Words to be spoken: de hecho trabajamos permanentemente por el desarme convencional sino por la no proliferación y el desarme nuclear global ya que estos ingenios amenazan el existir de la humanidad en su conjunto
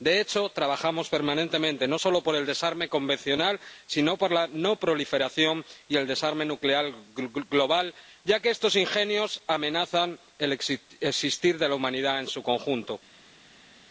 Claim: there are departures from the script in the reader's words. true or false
true